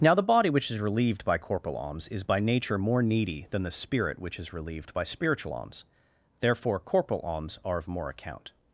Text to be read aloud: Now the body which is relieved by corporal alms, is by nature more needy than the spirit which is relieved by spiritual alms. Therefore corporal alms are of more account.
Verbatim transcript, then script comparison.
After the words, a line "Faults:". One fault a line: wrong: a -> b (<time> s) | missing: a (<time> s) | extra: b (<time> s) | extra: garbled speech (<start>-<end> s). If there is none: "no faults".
Now the body which is relieved by corporal alms, is by nature more needy than the spirit which is relieved by spiritual alms. Therefore corporal alms are of more account.
Faults:
no faults